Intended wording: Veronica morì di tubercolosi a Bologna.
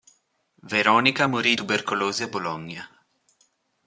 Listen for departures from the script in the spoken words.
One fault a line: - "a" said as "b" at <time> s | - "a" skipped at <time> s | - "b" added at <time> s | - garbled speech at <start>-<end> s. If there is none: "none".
- "di" skipped at 1.6 s